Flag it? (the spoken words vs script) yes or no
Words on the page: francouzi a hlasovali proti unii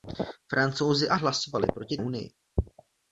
no